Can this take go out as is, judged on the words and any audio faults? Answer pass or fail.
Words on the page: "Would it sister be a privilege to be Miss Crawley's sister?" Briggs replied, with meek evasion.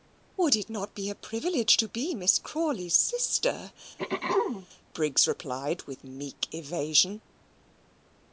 fail